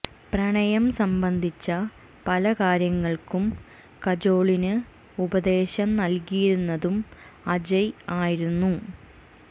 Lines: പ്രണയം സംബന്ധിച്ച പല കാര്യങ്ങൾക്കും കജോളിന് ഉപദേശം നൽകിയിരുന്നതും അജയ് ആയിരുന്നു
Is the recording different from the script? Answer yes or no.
no